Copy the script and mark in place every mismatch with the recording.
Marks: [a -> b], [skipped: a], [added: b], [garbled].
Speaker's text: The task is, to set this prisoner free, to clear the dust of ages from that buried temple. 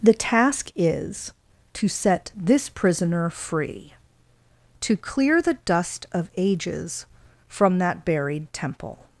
The task is, to set this prisoner free, to clear the dust of ages from that buried temple.